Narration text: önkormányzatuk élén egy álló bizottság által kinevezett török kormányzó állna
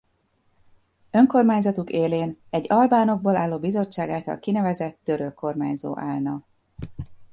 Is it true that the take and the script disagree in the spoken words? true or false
true